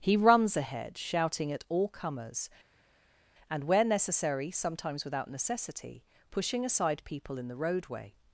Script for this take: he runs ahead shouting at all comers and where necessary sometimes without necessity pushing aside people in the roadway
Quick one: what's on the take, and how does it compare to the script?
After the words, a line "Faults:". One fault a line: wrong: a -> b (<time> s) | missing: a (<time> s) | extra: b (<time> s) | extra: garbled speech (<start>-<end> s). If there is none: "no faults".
he runs ahead shouting at all comers and where necessary sometimes without necessity pushing aside people in the roadway
Faults:
no faults